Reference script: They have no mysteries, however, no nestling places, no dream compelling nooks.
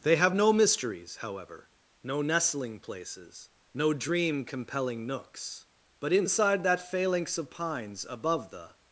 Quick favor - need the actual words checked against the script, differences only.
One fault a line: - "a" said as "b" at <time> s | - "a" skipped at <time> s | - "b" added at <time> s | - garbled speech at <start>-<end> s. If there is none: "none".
- "But inside that phalanx of pines above the" added at 6.0 s